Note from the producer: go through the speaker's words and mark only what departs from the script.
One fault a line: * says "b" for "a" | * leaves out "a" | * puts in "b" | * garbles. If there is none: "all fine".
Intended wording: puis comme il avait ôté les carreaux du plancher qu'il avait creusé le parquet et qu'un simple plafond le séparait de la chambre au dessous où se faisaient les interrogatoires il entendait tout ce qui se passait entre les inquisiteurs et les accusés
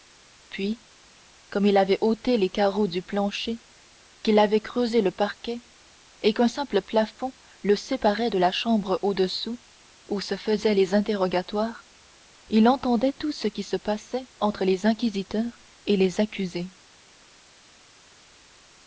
all fine